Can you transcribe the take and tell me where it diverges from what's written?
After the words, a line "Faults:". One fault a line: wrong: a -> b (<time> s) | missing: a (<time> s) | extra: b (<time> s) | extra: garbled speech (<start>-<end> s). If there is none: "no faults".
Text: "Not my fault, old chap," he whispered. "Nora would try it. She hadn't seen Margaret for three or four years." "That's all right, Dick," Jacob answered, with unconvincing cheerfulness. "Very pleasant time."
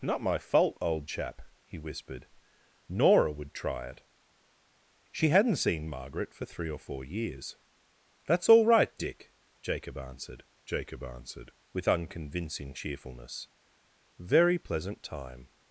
"Not my fault, old chap," he whispered. "Nora would try it. She hadn't seen Margaret for three or four years." "That's all right, Dick," Jacob answered Jacob answered, with unconvincing cheerfulness. "Very pleasant time."
Faults:
extra: Jacob answered (10.6 s)